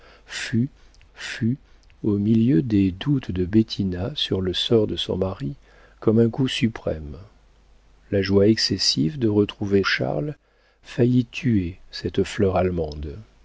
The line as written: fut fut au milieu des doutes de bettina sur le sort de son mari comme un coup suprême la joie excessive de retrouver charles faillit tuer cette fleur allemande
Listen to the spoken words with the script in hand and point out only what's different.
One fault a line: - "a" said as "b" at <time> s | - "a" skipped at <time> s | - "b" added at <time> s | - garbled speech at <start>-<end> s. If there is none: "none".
none